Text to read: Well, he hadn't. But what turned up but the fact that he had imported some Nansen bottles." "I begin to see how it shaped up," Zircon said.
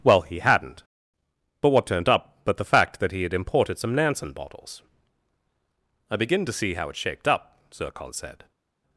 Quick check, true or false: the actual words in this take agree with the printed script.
true